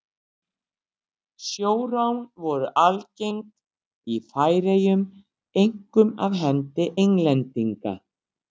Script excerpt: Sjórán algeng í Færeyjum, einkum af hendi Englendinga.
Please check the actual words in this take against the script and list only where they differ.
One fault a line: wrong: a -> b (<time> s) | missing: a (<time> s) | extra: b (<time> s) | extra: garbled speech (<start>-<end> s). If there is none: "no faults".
extra: voru (2.4 s)